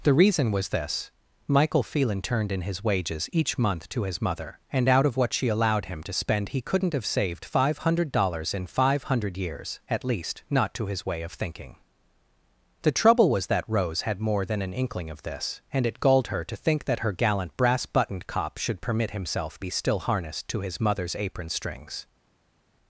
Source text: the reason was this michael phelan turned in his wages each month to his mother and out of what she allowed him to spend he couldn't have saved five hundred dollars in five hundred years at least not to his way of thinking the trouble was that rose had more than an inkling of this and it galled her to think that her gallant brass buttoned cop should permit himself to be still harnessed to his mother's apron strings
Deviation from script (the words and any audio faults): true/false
true